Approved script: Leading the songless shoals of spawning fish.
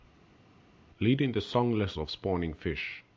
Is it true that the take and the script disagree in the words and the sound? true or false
true